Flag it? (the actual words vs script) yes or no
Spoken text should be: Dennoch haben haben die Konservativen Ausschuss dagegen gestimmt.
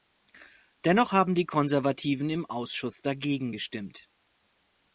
yes